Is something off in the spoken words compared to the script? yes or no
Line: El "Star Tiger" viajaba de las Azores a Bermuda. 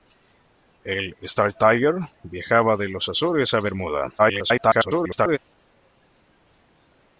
yes